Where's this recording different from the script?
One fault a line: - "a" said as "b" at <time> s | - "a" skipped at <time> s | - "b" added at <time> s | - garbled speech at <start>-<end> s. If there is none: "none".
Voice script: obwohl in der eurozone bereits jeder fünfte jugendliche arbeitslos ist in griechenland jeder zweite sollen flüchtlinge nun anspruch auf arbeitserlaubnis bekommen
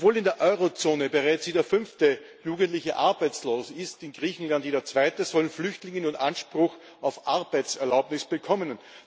none